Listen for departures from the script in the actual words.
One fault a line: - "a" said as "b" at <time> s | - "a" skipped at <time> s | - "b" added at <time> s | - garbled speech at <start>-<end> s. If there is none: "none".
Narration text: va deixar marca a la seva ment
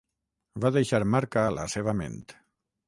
none